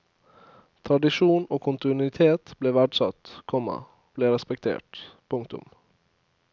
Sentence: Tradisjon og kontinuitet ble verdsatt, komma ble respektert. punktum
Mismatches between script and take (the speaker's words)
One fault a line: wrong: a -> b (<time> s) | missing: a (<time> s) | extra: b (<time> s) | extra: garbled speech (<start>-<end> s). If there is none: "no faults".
no faults